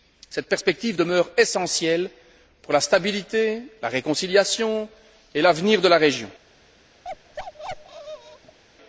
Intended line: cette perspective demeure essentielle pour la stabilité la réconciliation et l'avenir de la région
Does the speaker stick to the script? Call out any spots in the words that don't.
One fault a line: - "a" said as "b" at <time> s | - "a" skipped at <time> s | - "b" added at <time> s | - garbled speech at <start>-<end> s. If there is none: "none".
none